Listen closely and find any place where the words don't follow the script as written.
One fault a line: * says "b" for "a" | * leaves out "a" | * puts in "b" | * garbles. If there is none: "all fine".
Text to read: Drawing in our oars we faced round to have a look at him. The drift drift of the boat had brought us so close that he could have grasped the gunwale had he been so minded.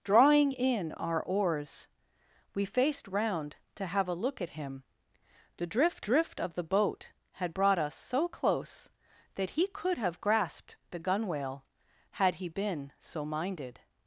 all fine